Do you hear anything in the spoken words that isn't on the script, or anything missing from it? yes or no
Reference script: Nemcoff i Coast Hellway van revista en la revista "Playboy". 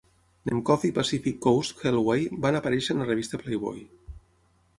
yes